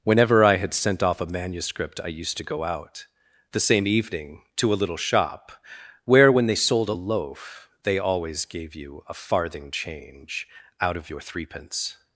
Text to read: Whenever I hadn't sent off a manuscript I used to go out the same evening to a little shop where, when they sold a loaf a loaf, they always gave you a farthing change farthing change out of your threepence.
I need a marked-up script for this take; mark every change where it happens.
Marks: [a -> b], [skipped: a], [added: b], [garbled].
Whenever I [hadn't -> had] sent off a manuscript I used to go out the same evening to a little shop where, when they sold a loaf [skipped: a loaf,] they always gave you a farthing change [skipped: farthing change] out of your threepence.